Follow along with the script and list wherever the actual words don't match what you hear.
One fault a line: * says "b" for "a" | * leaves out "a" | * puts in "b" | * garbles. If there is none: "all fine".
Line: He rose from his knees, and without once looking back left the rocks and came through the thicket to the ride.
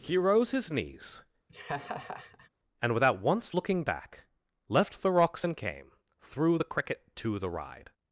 * leaves out "from"
* says "cricket" for "thicket"